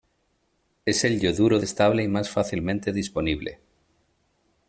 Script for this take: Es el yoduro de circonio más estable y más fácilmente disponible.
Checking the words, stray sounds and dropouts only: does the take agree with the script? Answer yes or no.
no